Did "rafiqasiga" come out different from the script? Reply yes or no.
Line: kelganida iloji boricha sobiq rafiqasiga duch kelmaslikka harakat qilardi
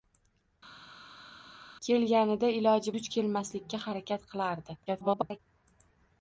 yes